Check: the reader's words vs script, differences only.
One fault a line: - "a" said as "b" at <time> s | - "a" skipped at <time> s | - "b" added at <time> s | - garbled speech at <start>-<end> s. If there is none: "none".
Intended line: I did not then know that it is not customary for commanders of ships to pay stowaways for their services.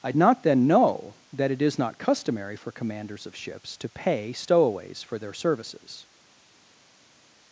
- "did" skipped at 0.1 s